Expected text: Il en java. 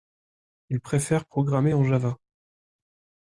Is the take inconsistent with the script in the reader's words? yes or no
yes